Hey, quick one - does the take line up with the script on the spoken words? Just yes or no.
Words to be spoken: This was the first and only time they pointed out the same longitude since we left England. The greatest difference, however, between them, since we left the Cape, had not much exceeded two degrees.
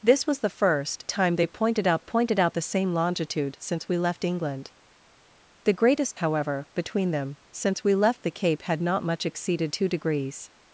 no